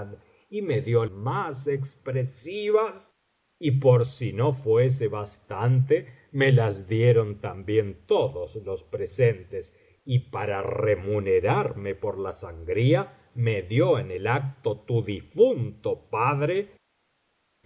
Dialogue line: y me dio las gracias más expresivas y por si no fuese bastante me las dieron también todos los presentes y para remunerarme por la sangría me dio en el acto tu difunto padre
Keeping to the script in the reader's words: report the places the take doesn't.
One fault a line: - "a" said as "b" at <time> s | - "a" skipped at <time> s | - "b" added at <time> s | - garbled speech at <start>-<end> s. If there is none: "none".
- "las gracias" skipped at 1.1 s